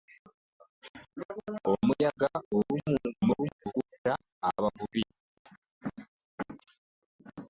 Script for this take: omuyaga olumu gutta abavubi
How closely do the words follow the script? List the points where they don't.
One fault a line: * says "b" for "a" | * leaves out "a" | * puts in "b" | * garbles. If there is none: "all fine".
* garbles